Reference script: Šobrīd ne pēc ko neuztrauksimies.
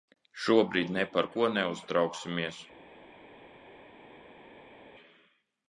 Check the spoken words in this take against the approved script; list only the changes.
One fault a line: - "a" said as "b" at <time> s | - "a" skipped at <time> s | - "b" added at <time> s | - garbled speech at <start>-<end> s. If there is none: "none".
- "pēc" said as "par" at 1.2 s